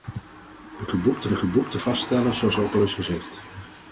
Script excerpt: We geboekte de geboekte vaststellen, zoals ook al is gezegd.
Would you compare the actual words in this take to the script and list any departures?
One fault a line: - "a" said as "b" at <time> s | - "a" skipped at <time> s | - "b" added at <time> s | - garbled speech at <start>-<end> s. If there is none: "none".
none